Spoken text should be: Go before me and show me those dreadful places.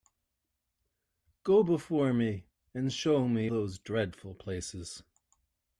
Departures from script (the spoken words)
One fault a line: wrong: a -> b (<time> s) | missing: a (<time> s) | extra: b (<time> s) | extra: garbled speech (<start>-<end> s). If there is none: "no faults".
no faults